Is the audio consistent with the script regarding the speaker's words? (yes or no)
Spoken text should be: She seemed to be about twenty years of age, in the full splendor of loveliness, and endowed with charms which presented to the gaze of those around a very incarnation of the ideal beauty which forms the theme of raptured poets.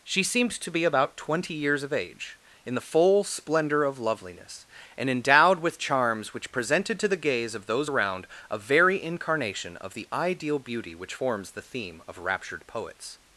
yes